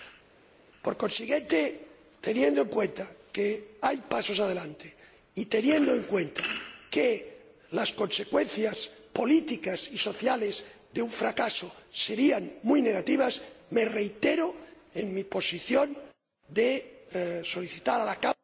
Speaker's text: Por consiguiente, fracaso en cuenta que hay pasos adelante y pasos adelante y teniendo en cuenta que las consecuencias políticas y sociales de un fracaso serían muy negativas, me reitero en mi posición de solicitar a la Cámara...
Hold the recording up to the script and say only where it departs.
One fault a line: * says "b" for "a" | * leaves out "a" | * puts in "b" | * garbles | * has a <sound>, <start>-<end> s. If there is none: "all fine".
* says "teniendo" for "fracaso"
* leaves out "pasos adelante y"